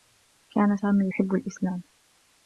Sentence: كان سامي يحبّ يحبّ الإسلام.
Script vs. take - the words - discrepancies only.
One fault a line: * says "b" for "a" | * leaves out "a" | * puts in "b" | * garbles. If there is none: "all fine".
* leaves out "يحبّ"